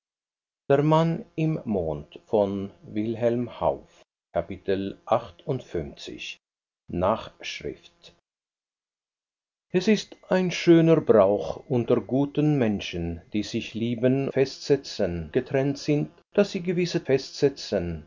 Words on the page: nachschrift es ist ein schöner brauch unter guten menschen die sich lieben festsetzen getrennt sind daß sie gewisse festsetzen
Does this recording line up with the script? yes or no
yes